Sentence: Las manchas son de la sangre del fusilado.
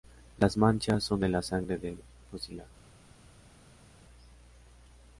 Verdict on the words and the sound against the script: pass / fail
pass